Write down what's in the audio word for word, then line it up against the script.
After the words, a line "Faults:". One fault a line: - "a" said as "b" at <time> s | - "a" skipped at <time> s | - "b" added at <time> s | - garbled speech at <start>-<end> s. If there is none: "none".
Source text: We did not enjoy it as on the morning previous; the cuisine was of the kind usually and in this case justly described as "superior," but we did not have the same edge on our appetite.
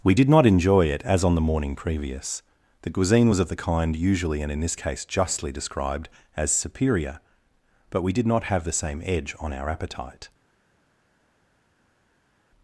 We did not enjoy it as on the morning previous; the cuisine was of the kind usually and in this case justly described as "superior," but we did not have the same edge on our appetite.
Faults:
none